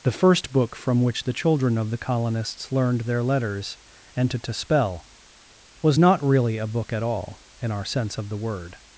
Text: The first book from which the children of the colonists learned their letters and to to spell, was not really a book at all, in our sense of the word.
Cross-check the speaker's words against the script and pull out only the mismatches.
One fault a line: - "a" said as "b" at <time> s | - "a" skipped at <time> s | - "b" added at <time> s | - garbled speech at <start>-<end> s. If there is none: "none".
none